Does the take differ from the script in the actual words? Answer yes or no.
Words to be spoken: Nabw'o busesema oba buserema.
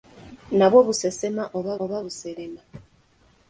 yes